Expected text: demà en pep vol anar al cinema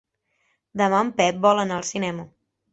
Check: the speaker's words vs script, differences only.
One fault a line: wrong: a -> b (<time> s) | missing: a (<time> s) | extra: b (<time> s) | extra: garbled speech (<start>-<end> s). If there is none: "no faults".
no faults